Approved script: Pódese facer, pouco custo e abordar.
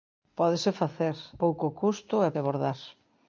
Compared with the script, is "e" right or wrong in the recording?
right